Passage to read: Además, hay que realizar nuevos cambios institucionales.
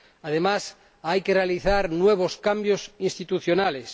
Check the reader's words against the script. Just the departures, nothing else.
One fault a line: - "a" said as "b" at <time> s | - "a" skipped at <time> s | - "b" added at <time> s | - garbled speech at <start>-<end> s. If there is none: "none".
none